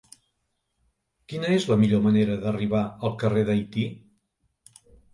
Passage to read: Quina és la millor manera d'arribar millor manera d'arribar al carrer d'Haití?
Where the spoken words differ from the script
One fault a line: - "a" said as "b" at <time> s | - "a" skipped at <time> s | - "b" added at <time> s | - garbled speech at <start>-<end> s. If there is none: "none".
- "millor manera d'arribar" skipped at 2.8 s